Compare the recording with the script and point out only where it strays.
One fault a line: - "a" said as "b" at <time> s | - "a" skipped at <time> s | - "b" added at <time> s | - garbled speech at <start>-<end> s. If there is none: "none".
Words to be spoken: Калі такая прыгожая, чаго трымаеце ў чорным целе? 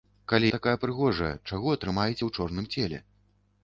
none